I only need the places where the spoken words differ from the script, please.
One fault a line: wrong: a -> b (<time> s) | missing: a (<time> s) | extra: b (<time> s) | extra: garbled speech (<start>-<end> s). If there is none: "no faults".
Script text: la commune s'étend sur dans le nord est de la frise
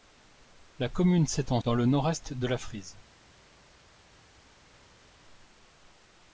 missing: sur (1.6 s)